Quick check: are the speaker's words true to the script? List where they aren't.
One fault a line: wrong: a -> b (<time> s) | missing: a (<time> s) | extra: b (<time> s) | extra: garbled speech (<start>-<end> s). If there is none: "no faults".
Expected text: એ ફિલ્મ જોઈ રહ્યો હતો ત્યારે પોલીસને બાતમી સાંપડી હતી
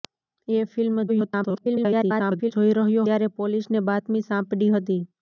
extra: garbled speech (1.1-2.5 s)
missing: હતો (3.1 s)